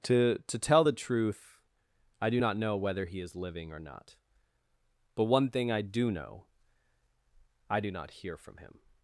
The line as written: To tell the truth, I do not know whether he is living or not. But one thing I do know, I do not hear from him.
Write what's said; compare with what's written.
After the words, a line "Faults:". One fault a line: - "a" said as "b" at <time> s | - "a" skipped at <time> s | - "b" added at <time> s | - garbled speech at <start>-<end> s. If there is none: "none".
To to tell the truth, I do not know whether he is living or not. But one thing I do know, I do not hear from him.
Faults:
- "to" added at 0.5 s